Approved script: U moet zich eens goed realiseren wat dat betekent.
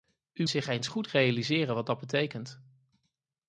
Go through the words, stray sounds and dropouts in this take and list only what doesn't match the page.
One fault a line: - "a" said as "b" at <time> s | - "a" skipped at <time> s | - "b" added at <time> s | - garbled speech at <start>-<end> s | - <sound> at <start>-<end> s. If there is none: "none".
- "moet" skipped at 0.5 s